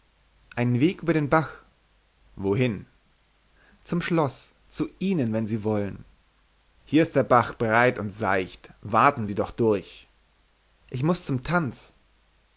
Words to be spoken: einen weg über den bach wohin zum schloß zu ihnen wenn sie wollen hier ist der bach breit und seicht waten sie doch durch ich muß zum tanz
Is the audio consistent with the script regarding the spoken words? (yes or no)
yes